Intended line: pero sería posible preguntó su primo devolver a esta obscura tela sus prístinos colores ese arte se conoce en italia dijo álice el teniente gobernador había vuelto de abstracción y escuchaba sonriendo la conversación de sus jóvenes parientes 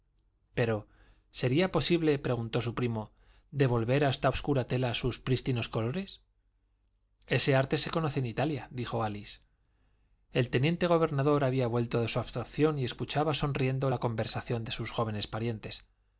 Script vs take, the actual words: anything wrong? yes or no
yes